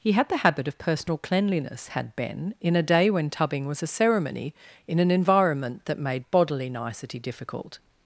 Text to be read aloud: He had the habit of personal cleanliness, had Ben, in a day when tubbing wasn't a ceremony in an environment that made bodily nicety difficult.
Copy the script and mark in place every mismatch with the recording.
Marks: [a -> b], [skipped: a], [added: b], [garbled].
He had the habit of personal cleanliness, had Ben, in a day when tubbing [wasn't -> was] a ceremony in an environment that made bodily nicety difficult.